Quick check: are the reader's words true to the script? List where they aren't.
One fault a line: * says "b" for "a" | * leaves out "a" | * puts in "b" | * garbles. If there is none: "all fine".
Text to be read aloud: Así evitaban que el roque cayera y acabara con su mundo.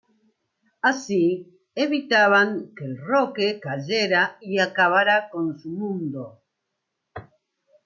all fine